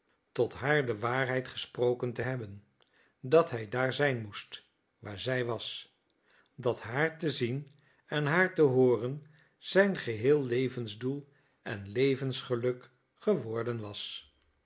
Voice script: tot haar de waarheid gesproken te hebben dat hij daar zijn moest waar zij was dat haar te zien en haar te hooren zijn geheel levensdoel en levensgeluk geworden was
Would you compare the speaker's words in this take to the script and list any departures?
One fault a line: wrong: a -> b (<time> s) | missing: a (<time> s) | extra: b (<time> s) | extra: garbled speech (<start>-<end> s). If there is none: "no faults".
no faults